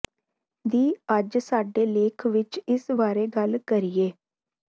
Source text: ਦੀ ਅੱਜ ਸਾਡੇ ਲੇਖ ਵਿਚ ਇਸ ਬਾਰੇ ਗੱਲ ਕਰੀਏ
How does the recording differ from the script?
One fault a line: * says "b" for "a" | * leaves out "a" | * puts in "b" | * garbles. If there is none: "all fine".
all fine